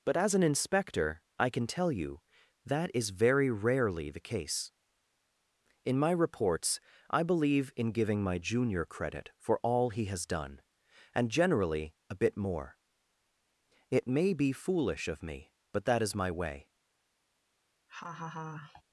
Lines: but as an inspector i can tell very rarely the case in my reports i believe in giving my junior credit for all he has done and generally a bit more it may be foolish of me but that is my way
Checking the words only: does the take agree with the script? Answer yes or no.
no